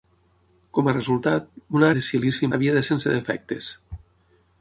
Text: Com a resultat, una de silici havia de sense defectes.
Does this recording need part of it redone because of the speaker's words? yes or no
no